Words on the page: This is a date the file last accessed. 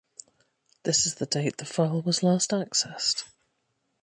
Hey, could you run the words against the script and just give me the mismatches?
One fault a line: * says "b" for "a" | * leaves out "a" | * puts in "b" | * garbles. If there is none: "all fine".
* says "the" for "a"
* puts in "was"